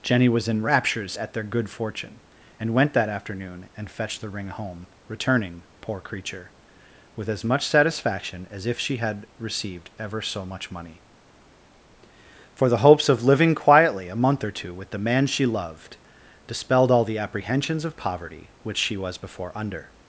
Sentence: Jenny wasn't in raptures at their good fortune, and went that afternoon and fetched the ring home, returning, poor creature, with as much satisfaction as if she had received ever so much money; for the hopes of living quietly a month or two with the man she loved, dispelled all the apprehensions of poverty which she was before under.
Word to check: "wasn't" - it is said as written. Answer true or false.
false